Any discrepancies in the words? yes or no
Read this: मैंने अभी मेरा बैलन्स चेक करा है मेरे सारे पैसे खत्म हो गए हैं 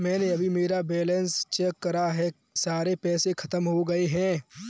yes